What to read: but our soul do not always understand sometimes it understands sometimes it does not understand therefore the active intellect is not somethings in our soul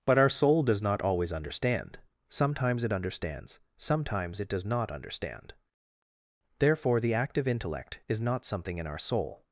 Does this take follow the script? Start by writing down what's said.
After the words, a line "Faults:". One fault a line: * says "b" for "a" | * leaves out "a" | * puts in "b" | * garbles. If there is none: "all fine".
but our soul does not always understand sometimes it understands sometimes it does not understand therefore the active intellect is not something in our soul
Faults:
* says "does" for "do"
* says "something" for "somethings"